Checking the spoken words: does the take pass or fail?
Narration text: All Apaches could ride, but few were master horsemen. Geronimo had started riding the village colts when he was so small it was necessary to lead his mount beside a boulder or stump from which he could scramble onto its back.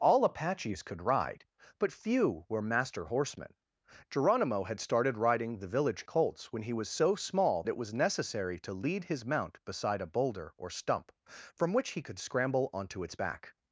pass